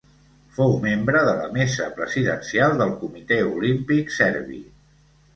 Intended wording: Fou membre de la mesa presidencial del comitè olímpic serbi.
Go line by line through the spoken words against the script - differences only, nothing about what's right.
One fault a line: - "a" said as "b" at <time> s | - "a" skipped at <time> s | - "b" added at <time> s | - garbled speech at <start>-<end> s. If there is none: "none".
none